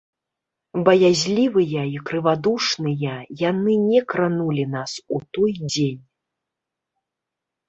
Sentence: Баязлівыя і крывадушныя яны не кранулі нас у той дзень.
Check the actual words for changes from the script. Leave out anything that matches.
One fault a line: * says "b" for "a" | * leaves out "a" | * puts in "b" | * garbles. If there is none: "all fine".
all fine